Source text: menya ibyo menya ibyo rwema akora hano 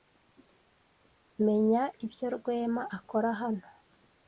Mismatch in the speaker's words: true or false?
true